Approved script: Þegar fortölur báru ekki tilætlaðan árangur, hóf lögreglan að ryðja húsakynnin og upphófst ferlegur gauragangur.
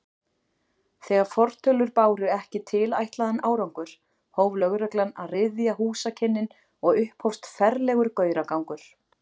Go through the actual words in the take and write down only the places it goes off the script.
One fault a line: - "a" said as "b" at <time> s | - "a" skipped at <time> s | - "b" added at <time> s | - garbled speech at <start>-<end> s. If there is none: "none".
none